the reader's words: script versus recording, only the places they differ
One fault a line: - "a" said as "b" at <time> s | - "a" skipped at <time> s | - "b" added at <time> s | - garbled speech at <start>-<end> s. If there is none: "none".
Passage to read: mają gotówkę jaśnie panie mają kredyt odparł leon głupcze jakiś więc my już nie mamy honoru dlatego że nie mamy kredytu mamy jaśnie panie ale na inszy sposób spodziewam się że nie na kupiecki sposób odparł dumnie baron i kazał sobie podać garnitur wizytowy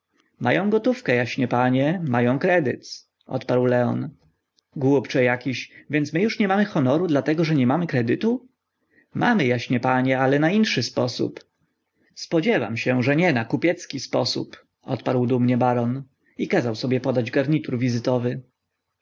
none